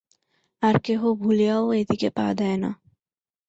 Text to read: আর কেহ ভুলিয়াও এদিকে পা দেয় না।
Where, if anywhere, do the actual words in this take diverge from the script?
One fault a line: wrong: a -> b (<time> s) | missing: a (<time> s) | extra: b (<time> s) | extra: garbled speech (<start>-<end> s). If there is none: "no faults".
no faults